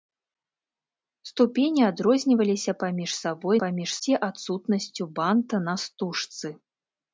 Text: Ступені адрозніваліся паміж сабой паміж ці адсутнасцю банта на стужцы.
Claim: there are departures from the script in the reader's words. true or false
false